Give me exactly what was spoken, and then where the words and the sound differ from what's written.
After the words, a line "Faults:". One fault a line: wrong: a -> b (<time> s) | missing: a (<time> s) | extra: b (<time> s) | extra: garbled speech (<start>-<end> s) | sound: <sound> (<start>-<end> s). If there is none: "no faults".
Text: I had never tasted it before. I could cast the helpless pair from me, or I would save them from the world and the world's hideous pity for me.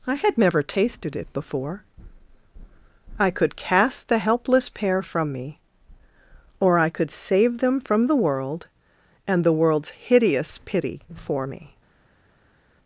I had never tasted it before. I could cast the helpless pair from me, or I could save them from the world and the world's hideous pity for me.
Faults:
wrong: would -> could (6.9 s)